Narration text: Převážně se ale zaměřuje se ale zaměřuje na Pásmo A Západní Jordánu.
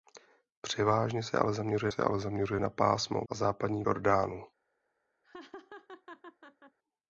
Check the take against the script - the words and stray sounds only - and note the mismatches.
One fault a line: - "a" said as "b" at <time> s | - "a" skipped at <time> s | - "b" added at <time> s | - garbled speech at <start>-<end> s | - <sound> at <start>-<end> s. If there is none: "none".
- laugh at 5.2-6.8 s